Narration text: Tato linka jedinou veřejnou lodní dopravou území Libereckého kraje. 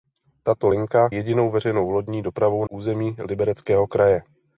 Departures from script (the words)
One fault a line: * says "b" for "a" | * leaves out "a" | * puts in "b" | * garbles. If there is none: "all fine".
all fine